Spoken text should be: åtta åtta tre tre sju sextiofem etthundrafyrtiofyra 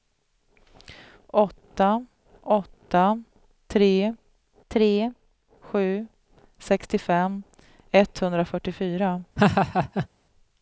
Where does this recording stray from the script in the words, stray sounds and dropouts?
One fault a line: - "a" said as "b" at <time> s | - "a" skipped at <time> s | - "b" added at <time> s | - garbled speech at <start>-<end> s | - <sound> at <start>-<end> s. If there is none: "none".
- laugh at 9.4-10.1 s